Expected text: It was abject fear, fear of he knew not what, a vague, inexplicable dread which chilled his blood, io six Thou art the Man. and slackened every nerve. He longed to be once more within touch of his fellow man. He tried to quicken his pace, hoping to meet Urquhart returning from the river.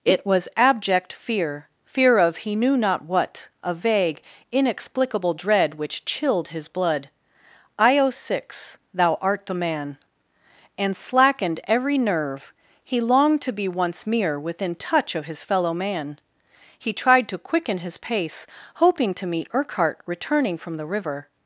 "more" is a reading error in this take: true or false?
true